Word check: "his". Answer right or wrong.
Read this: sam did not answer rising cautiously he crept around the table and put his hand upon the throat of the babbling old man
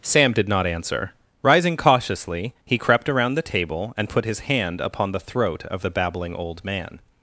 right